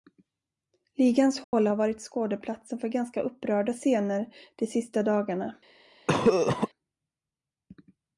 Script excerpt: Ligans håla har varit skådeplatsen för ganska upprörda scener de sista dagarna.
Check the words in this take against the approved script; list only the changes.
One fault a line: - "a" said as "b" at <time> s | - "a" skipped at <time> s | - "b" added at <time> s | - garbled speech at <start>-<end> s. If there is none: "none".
none